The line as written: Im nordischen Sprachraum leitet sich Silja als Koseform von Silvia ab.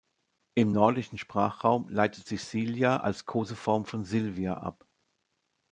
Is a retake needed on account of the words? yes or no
no